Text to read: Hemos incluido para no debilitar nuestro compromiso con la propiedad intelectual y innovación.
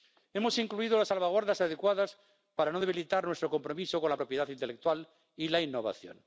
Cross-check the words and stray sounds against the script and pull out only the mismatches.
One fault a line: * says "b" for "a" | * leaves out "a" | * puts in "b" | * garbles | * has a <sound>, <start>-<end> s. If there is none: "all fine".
* puts in "las salvaguardas adecuadas"
* puts in "la"